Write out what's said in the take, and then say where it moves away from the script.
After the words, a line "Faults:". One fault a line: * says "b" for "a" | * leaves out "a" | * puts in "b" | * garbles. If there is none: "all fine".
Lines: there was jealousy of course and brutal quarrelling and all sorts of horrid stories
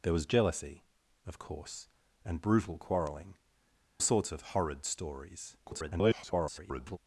there was jealousy of course and brutal quarrelling sorts of horrid stories [garbled]
Faults:
* leaves out "and all"
* garbles